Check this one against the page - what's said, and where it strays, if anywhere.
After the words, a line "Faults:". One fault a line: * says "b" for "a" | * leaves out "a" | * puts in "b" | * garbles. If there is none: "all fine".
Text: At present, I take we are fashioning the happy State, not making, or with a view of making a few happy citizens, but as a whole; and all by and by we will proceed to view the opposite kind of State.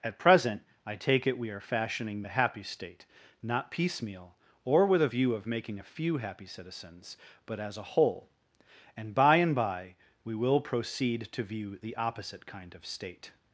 At present, I take it, we are fashioning the happy State, not piecemeal, or with a view of making a few happy citizens, but as a whole; and by and by we will proceed to view the opposite kind of State.
Faults:
* puts in "it"
* says "piecemeal" for "making"
* leaves out "all"